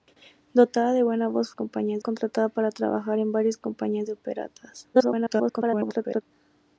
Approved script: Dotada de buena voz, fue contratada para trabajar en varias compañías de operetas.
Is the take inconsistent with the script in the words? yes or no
yes